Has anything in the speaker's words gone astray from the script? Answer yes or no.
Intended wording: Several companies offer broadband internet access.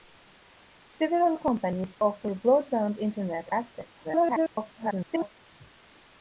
yes